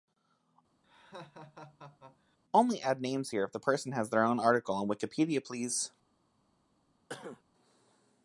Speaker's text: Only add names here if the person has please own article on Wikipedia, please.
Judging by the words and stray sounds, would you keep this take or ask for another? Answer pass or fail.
fail